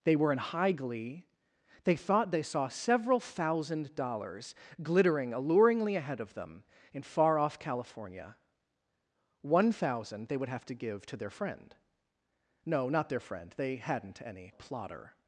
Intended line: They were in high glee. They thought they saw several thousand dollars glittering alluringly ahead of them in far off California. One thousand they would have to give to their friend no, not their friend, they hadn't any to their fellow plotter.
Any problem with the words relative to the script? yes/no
yes